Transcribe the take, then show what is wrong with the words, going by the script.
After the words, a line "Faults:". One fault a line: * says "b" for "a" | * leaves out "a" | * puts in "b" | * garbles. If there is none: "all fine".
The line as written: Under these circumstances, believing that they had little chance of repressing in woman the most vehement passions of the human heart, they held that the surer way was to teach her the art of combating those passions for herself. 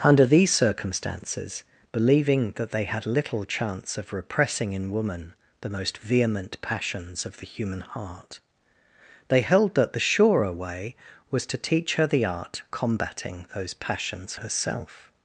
Under these circumstances, believing that they had little chance of repressing in woman the most vehement passions of the human heart, they held that the surer way was to teach her the art combating those passions herself.
Faults:
* leaves out "of"
* leaves out "for"